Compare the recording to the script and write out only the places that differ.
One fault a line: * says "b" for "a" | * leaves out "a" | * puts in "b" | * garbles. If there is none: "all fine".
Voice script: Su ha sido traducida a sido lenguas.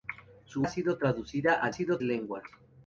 all fine